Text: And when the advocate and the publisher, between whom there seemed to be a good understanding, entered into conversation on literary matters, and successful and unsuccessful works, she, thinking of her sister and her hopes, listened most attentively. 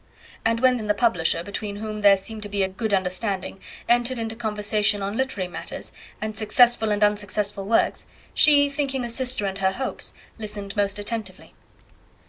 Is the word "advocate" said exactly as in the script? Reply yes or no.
no